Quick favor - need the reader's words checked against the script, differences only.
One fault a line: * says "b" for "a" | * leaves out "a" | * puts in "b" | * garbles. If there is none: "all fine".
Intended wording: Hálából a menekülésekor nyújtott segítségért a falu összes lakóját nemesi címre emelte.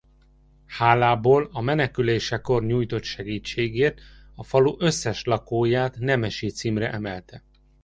all fine